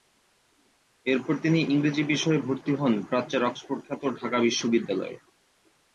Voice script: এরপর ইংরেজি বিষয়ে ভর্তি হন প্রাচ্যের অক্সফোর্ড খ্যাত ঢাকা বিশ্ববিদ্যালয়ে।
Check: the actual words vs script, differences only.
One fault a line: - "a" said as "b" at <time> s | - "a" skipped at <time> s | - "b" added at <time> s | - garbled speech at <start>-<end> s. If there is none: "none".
- "তিনি" added at 1.4 s